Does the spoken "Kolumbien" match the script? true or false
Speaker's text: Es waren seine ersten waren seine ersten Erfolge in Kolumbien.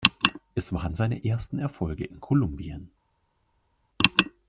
true